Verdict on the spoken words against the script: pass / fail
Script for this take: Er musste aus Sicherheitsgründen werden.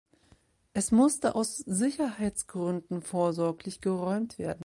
fail